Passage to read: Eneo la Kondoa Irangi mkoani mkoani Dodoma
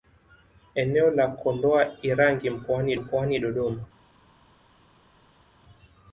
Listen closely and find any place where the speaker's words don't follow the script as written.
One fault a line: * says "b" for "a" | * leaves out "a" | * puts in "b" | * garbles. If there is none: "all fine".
all fine